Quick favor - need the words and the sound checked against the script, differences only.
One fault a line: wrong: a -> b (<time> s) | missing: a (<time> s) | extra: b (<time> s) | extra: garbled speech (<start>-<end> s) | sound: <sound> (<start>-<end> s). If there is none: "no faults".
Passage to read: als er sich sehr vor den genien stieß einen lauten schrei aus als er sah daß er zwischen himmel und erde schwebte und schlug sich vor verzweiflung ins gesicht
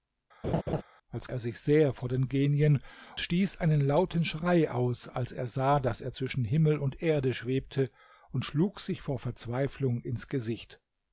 sound: laugh (0.4-0.8 s)